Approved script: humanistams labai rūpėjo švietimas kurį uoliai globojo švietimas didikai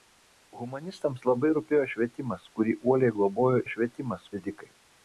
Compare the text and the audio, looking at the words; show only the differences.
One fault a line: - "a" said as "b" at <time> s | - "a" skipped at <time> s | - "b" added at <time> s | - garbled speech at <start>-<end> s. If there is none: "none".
none